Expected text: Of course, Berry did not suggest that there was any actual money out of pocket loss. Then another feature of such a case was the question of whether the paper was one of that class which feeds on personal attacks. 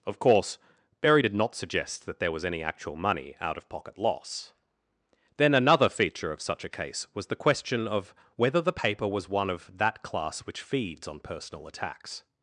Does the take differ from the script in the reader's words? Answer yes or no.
no